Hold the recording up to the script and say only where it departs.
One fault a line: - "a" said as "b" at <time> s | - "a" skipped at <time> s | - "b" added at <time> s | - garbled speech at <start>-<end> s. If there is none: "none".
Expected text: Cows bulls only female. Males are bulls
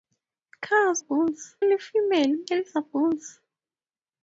none